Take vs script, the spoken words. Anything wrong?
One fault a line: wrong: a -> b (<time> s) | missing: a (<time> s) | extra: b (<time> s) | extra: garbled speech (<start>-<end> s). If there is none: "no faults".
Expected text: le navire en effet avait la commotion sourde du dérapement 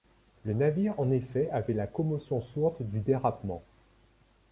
no faults